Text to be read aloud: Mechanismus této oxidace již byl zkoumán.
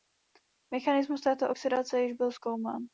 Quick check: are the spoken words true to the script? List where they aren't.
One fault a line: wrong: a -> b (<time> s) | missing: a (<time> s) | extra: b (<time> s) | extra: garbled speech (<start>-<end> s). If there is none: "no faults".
no faults